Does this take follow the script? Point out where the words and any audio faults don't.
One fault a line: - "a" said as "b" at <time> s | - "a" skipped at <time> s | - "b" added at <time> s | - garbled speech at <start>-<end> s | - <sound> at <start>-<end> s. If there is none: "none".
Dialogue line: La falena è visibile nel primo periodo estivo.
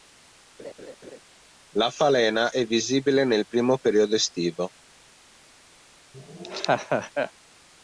- laugh at 0.6-1.2 s
- laugh at 6.1-7.3 s